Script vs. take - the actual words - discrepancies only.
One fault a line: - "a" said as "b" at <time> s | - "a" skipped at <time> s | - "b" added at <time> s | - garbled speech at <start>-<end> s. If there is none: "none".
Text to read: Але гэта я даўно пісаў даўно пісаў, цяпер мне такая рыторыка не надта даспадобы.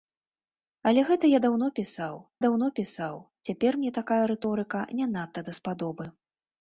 none